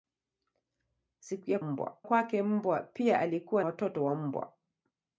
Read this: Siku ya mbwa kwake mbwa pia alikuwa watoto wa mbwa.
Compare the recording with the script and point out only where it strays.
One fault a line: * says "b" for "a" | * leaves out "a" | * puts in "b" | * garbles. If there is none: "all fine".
all fine